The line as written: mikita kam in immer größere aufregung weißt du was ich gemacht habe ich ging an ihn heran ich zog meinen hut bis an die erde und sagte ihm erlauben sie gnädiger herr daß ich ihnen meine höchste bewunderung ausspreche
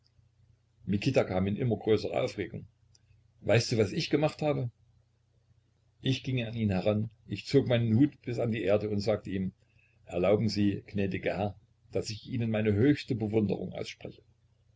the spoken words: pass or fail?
pass